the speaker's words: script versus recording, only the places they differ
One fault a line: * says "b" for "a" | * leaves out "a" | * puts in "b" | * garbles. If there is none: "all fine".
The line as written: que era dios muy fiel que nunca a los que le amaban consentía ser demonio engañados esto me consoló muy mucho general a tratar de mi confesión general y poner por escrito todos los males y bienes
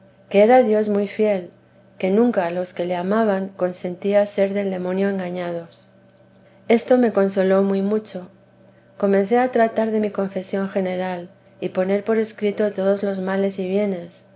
* puts in "del"
* says "comencé" for "general"